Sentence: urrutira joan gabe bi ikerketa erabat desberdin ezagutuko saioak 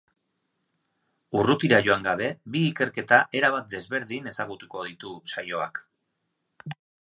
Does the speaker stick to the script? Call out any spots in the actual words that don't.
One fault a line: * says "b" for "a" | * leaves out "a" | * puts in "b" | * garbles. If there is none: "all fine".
* puts in "ditu"